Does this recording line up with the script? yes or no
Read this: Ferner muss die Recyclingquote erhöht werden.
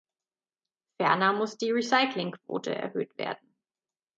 yes